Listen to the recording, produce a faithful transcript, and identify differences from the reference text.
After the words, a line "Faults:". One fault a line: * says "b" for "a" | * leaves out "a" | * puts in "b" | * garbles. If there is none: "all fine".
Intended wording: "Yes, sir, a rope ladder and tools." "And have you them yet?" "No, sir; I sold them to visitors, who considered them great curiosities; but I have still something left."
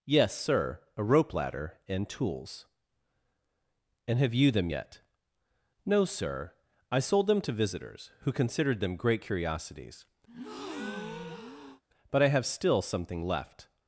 "Yes, sir, a rope ladder and tools." "And have you them yet?" "No, sir; I sold them to visitors, who considered them great curiosities; but I have still something left."
Faults:
all fine